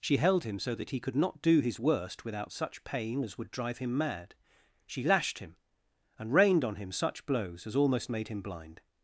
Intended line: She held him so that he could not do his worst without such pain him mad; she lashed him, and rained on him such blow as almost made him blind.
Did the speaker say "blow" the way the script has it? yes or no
no